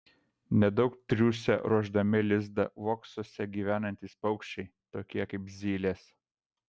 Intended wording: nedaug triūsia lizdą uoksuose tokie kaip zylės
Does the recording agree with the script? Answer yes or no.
no